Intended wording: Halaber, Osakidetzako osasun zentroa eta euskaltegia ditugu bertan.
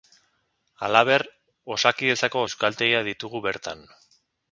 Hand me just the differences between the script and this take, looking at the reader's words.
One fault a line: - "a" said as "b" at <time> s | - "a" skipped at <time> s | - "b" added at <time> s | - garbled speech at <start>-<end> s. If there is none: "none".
- "osasun zentroa eta" skipped at 2.4 s